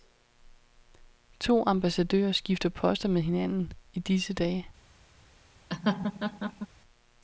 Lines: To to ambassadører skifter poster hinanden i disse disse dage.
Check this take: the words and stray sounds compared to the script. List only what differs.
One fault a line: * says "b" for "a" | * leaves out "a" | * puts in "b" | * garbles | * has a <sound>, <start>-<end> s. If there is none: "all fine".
* leaves out "to"
* puts in "med"
* leaves out "disse"
* has a laugh, 5.7-6.7 s